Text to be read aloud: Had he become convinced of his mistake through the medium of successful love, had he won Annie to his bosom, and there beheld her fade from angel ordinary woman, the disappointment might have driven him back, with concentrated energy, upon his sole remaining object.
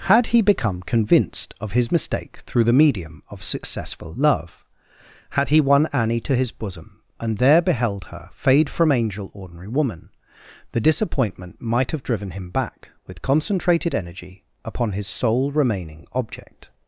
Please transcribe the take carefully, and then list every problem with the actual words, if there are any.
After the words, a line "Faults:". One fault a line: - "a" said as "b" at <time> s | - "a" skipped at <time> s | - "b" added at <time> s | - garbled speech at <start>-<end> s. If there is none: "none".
Had he become convinced of his mistake through the medium of successful love, had he won Annie to his bosom, and there beheld her fade from angel ordinary woman, the disappointment might have driven him back, with concentrated energy, upon his sole remaining object.
Faults:
none